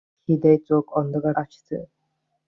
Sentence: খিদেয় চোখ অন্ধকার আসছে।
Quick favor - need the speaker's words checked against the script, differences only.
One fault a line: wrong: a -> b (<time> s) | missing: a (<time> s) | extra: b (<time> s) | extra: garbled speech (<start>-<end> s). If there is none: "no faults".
no faults